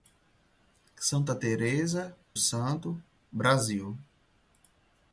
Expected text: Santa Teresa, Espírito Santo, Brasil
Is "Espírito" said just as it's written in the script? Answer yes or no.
no